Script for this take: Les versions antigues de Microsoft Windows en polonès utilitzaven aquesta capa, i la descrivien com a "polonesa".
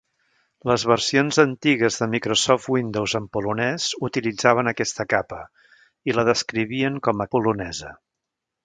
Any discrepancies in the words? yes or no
no